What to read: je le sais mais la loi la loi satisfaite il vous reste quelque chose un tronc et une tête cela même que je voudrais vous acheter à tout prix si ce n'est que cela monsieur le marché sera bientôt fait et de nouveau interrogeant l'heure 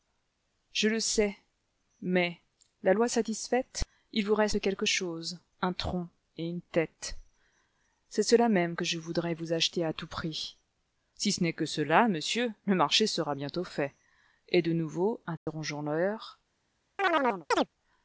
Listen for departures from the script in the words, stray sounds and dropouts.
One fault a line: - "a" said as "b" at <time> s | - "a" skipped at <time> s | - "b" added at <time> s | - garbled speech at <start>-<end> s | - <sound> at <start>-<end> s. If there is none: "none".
- "la loi" skipped at 3.1 s
- "c'est" added at 8.1 s
- dropout at 15.4-15.5 s
- chirp at 17.0-17.7 s